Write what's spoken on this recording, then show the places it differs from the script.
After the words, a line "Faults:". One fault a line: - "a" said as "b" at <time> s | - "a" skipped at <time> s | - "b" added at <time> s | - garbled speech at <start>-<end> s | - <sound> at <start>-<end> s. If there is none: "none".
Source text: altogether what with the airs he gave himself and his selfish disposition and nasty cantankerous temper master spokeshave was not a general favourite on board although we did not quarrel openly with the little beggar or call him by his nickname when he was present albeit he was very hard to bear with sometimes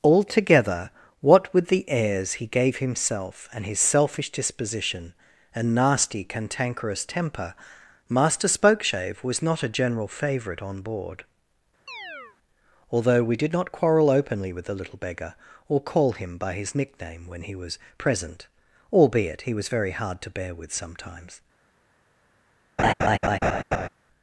altogether what with the airs he gave himself and his selfish disposition and nasty cantankerous temper master spokeshave was not a general favourite on board although we did not quarrel openly with the little beggar or call him by his nickname when he was present albeit he was very hard to bear with sometimes
Faults:
- chirp at 11.9-12.4 s
- laugh at 22.8-23.9 s